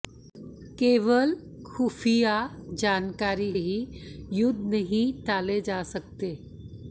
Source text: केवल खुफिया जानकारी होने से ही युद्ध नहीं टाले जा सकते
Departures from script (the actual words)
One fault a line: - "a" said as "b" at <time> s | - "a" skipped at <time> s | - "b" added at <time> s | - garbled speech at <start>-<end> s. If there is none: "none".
- "होने से" skipped at 3.5 s